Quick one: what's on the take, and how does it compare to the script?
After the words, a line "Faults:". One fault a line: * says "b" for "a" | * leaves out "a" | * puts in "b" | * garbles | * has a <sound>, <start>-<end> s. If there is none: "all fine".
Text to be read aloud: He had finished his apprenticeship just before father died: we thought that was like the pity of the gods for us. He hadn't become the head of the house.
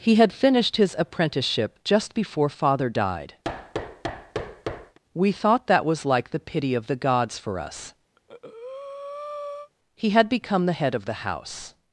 He had finished his apprenticeship just before father died: we thought that was like the pity of the gods for us. He had become the head of the house.
Faults:
* has a thud, 3.4-5.0 s
* has a breath, 8.2-9.7 s
* says "had" for "hadn't"